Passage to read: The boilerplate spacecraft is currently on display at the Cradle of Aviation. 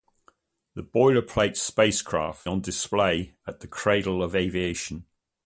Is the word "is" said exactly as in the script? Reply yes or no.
no